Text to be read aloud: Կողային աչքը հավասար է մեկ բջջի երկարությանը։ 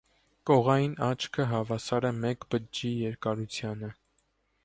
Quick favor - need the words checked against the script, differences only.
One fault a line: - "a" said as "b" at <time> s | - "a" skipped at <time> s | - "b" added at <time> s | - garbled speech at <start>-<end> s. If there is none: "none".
none